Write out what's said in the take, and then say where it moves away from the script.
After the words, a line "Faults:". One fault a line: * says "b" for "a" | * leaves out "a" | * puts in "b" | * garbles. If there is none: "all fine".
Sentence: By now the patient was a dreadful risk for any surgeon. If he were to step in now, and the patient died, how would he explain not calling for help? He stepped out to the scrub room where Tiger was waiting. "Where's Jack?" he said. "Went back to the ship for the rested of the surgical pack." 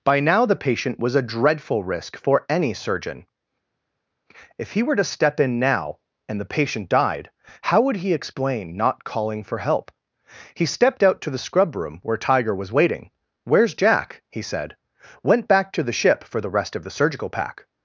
By now the patient was a dreadful risk for any surgeon. If he were to step in now, and the patient died, how would he explain not calling for help? He stepped out to the scrub room where Tiger was waiting. "Where's Jack?" he said. "Went back to the ship for the rest of the surgical pack."
Faults:
* says "rest" for "rested"